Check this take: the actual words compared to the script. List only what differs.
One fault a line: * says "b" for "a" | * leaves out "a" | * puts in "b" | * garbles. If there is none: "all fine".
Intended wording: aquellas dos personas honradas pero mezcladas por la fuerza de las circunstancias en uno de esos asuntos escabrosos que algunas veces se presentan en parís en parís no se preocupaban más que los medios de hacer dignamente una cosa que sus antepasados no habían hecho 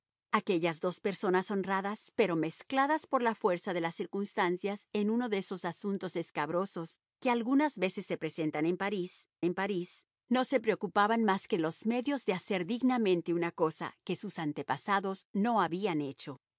all fine